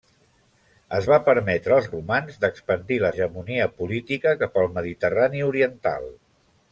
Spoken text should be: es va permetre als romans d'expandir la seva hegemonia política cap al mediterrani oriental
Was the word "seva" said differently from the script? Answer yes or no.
yes